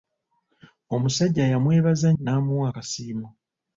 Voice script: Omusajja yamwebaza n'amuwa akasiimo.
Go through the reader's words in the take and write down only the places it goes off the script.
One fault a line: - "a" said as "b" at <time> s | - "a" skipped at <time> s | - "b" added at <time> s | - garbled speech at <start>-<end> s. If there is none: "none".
none